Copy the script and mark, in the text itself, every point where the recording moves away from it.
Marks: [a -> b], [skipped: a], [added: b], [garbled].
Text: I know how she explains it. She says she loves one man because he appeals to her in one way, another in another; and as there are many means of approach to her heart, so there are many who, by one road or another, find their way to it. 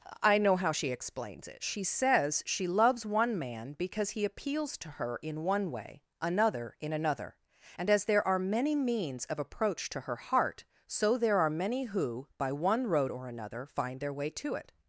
I know how she explains it. She says she loves one man because he appeals to her in one way, another in another; and as there are many means of approach to her heart, so there are many who, by one road or another, find their way to it.